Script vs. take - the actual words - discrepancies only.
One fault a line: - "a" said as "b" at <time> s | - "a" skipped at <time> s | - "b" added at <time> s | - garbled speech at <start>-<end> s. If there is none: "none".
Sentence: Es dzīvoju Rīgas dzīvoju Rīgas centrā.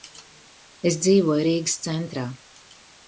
- "dzīvoju Rīgas" skipped at 1.8 s